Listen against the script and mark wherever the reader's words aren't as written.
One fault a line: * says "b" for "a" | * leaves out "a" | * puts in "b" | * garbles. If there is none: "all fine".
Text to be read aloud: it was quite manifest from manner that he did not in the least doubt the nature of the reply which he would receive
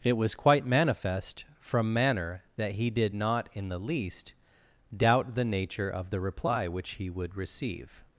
all fine